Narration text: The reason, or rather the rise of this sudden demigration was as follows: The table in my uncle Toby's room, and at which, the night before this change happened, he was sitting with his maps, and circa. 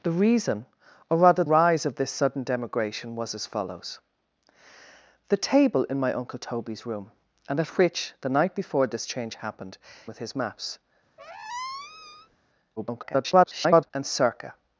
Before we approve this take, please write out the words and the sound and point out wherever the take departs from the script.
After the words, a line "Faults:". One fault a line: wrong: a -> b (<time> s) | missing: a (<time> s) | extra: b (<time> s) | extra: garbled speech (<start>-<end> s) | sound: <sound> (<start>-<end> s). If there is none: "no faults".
The reason, or rather rise of this sudden demigration was as follows: The table in my uncle Toby's room, and at which, the night before this change happened, with his maps, [garbled] and circa.
Faults:
missing: the (1.4 s)
missing: he was sitting (9.8 s)
sound: squeak (11.2-12.4 s)
extra: garbled speech (12.8-13.9 s)